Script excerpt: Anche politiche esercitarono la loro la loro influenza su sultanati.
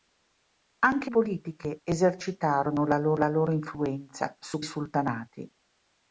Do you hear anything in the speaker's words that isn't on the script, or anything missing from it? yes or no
no